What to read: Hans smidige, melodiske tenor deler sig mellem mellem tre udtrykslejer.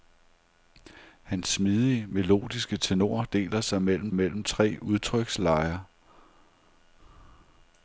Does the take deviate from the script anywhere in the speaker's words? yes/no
no